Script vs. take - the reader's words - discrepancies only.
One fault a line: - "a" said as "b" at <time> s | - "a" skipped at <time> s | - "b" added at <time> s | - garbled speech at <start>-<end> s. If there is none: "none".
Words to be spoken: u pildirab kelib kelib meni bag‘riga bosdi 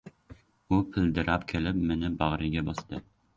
- "kelib" skipped at 1.8 s